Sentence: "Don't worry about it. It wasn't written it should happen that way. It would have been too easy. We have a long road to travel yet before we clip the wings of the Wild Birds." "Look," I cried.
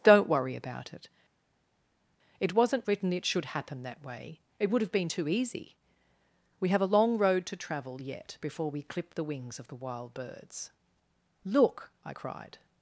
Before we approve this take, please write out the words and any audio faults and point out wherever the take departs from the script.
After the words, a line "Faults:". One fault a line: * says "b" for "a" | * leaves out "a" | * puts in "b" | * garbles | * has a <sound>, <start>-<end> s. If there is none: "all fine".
"Don't worry about it. It wasn't written it should happen that way. It would have been too easy. We have a long road to travel yet before we clip the wings of the Wild Birds." "Look," I cried.
Faults:
all fine